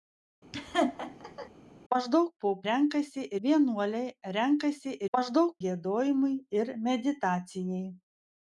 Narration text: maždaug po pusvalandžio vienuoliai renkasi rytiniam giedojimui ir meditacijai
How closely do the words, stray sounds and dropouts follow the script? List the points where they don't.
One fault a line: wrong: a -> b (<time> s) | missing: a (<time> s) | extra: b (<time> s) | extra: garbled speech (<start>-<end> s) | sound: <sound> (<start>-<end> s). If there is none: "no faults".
sound: laugh (0.5-1.5 s)
wrong: pusvalandžio -> renkasi (2.7 s)
wrong: rytiniam -> maždaug (5.2 s)